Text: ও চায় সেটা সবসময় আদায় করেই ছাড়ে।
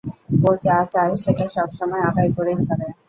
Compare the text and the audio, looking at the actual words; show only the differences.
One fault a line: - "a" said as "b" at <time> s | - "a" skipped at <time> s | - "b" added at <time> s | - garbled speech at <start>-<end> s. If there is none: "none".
- "যা" added at 0.6 s